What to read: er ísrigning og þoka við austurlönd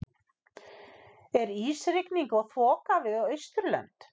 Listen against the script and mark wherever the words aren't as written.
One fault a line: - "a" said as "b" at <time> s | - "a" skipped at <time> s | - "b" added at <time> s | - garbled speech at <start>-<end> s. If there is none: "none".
none